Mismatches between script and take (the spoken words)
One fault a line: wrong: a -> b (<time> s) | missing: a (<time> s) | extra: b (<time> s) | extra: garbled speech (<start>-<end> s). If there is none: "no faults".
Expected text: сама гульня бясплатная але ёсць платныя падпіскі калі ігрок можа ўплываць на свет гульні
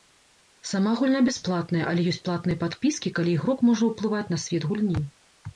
no faults